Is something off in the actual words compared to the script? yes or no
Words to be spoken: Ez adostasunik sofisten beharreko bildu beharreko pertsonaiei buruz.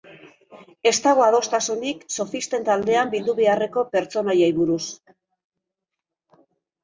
yes